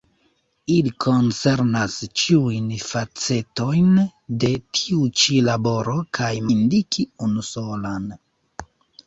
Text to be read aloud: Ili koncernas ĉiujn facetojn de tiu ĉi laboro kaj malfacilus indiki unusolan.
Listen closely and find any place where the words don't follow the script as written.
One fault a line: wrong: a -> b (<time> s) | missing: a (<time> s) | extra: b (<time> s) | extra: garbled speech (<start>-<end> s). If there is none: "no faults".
missing: malfacilus (6.3 s)